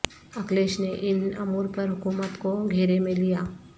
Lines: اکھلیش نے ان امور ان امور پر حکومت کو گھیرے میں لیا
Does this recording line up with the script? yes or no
no